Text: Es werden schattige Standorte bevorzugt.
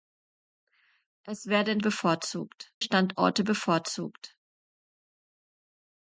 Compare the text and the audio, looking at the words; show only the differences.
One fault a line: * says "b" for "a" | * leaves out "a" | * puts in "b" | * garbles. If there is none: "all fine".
* says "bevorzugt" for "schattige"